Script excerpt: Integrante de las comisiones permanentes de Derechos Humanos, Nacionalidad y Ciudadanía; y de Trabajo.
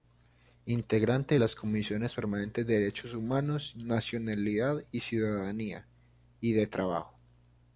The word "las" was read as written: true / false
true